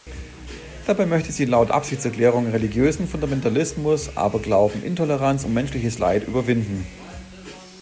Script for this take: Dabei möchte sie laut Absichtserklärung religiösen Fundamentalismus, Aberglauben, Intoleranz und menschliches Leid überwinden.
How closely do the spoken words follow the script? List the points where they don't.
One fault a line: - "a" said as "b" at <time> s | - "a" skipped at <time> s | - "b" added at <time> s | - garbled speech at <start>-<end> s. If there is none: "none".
none